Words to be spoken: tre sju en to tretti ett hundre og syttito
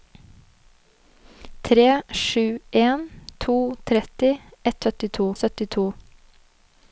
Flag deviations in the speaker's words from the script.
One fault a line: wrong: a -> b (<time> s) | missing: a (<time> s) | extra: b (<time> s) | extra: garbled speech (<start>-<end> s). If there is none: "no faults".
wrong: hundre -> syttito (4.8 s)